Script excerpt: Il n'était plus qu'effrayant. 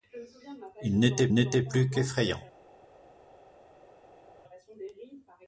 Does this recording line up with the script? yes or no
no